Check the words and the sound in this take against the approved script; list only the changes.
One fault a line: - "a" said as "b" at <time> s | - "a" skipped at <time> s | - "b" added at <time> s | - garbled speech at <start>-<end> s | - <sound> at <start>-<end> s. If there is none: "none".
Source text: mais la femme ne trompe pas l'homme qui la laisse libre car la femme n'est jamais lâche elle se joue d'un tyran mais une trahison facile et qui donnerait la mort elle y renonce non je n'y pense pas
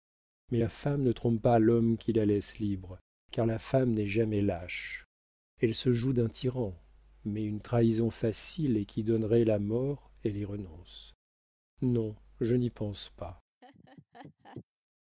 - laugh at 13.6-14.6 s